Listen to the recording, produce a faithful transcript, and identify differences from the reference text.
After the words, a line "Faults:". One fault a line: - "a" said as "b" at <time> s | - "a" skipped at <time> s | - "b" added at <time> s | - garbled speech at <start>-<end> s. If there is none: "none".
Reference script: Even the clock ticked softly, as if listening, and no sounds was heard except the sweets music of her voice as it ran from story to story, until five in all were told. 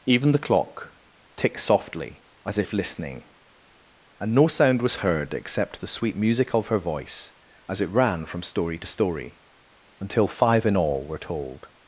Even the clock ticked softly, as if listening, and no sound was heard except the sweet music of her voice as it ran from story to story, until five in all were told.
Faults:
- "sounds" said as "sound" at 4.5 s
- "sweets" said as "sweet" at 5.9 s